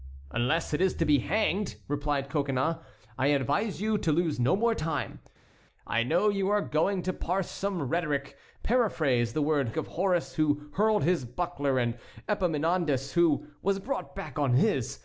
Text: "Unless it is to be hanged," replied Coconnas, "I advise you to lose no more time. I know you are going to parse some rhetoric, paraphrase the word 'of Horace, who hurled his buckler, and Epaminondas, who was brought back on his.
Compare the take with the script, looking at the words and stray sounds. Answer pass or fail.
pass